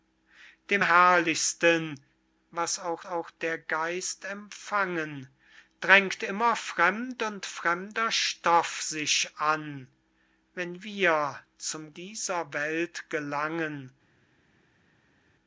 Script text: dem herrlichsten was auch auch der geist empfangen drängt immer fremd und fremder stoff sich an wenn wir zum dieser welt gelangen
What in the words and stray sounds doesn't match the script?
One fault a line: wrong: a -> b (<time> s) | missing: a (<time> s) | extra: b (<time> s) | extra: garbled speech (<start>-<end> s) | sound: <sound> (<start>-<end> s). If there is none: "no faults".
no faults